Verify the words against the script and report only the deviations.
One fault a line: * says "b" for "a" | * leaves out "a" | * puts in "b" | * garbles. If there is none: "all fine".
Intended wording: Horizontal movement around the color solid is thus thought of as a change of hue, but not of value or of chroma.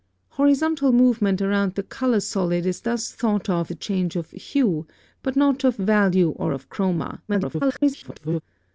* leaves out "as"
* garbles